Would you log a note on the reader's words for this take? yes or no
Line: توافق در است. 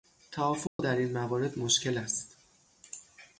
yes